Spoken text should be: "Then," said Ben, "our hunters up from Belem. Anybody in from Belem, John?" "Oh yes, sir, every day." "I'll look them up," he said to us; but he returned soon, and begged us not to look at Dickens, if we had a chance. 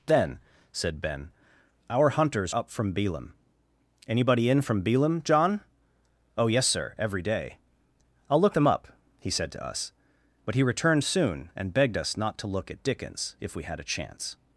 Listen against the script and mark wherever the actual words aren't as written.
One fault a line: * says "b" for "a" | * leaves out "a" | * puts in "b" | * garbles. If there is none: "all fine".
all fine